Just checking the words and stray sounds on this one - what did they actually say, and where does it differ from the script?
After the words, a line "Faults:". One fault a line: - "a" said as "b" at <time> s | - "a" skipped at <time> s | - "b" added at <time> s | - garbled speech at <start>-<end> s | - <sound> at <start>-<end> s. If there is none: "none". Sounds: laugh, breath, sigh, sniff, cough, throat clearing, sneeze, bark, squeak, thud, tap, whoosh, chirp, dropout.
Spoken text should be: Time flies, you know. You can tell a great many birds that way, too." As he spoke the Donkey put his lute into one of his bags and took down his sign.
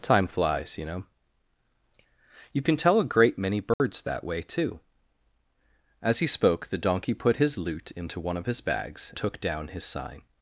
Time flies, you know. You can tell a great many birds that way, too." As he spoke the Donkey put his lute into one of his bags took down his sign.
Faults:
- dropout at 3.7-3.8 s
- "and" skipped at 9.1 s